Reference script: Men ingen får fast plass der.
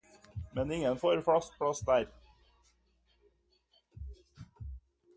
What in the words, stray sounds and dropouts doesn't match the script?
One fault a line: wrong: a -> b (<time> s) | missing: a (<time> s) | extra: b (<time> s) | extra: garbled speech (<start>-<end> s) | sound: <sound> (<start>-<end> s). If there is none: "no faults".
no faults